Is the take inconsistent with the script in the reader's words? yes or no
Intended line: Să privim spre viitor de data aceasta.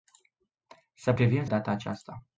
yes